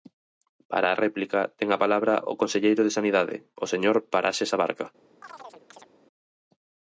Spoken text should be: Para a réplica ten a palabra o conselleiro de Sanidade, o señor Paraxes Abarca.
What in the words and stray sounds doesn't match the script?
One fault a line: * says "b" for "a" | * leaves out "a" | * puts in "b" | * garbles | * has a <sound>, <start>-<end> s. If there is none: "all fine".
* has a chirp, 5.2-5.9 s